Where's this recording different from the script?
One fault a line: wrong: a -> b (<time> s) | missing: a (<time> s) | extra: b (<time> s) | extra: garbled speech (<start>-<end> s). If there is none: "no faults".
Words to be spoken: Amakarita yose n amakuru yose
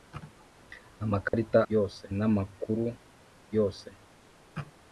no faults